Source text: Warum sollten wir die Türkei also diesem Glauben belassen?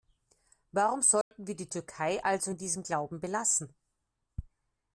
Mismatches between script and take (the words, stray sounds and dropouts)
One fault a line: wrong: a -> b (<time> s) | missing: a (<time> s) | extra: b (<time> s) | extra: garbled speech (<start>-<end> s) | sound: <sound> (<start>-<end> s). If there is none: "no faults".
sound: dropout (1.2-1.3 s)
extra: in (2.5 s)